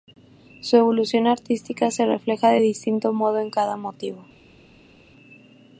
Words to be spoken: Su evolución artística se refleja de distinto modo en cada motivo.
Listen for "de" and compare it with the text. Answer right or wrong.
right